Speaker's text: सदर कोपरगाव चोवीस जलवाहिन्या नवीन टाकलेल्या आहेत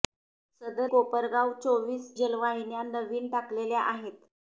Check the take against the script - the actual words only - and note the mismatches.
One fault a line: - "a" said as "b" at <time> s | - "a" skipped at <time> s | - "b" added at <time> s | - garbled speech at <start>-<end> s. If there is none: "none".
none